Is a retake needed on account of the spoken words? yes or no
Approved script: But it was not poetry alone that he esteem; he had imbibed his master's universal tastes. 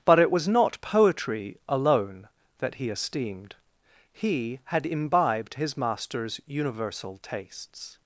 yes